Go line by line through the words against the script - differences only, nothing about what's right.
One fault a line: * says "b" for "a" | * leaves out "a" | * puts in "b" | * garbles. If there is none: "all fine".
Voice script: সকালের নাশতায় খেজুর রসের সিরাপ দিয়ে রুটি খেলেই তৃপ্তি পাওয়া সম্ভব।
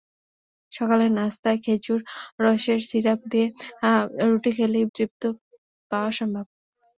all fine